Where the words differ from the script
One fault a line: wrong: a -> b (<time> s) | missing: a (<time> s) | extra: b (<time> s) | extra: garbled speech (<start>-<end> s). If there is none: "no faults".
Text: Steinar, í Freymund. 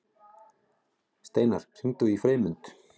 extra: hringdu (1.8 s)